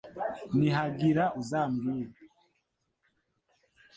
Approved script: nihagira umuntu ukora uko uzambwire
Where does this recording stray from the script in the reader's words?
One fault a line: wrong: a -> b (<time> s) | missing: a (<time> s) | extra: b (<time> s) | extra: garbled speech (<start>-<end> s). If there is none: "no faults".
missing: umuntu ukora uko (1.2 s)